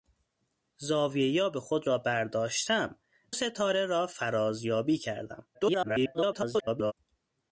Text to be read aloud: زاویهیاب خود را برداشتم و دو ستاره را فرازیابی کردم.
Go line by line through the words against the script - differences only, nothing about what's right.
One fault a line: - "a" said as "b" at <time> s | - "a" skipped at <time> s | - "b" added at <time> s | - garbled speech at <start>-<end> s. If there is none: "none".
- "و دو" skipped at 3.0 s
- garbled speech at 5.5-6.9 s